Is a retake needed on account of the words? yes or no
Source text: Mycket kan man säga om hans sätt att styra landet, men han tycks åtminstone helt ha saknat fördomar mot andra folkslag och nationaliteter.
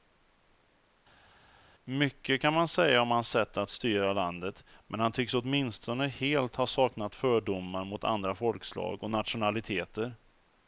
no